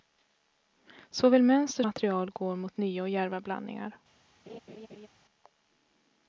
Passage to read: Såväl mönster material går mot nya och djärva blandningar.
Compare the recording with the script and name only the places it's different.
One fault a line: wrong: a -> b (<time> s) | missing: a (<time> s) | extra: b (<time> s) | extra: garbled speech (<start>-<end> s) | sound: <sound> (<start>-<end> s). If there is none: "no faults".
sound: laugh (4.5-5.1 s)